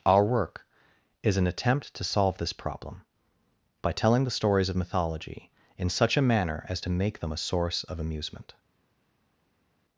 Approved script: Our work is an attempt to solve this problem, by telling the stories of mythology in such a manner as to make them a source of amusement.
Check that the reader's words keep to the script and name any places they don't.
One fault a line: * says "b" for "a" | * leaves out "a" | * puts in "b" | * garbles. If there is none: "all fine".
all fine